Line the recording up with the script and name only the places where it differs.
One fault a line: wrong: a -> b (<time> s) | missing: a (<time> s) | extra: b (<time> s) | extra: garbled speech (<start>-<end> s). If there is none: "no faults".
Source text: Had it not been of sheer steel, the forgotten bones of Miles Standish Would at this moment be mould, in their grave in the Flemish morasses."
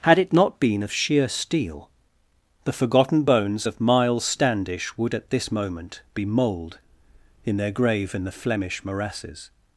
no faults